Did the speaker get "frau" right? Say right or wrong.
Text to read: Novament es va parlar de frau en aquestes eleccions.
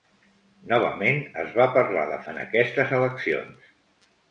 wrong